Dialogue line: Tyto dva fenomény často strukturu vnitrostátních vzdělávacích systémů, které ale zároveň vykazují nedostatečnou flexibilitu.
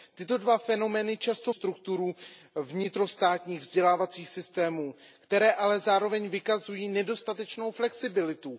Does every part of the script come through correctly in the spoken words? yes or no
yes